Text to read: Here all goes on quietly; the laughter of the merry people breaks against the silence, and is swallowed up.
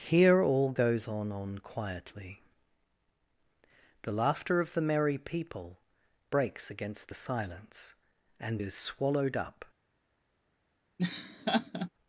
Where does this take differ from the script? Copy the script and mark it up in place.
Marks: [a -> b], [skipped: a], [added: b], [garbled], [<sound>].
Here all goes on [added: on] quietly; the laughter of the merry people breaks against the silence, and is swallowed up. [laugh]